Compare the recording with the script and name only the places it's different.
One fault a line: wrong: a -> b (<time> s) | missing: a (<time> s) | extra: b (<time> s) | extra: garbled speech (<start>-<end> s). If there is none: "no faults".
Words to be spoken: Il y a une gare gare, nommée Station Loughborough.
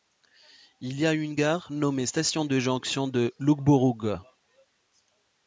missing: gare (1.7 s)
extra: de Jonction de (2.4 s)